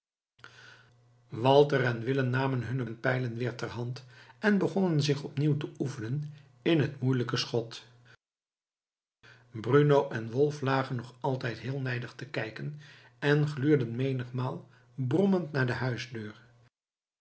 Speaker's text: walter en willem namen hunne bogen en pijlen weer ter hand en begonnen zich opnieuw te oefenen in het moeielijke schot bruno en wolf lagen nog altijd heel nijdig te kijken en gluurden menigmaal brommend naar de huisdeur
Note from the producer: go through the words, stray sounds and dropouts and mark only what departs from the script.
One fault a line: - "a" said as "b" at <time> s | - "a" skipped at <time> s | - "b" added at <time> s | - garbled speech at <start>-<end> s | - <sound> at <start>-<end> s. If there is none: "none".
- "bogen" skipped at 2.9 s